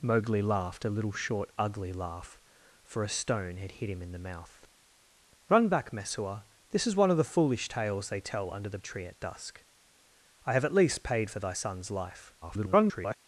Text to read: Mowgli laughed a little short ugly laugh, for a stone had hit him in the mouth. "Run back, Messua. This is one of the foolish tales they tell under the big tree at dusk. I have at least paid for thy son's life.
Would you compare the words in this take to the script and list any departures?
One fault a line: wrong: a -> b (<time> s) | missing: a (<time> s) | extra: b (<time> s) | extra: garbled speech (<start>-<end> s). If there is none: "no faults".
missing: big (8.8 s)
extra: garbled speech (12.4-13.2 s)